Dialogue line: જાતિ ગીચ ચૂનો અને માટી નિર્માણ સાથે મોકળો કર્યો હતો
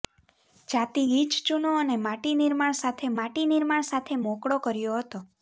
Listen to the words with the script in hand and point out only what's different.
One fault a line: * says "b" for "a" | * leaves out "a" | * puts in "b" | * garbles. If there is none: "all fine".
* puts in "માટી નિર્માણ સાથે"